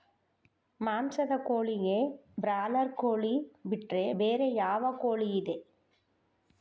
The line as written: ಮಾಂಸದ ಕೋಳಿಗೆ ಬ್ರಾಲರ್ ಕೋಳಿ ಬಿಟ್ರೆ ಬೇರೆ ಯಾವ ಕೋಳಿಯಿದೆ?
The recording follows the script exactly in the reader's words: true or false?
true